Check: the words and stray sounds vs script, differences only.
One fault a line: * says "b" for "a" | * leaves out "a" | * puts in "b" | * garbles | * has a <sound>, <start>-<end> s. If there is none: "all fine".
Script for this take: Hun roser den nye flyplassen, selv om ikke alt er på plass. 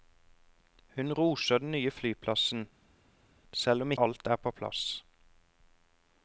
* leaves out "ikke"